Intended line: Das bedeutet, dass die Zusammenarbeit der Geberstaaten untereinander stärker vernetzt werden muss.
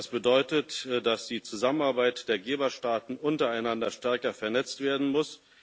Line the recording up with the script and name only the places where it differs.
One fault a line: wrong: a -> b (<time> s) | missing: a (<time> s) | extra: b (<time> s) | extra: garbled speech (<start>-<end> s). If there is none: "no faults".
no faults